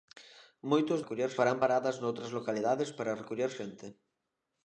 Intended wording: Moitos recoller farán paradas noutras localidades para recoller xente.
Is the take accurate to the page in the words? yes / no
yes